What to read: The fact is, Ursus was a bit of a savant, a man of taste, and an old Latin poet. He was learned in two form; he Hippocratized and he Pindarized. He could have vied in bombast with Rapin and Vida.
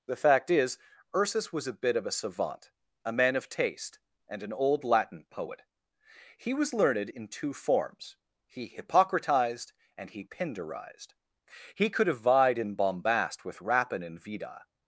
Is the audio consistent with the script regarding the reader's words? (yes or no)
no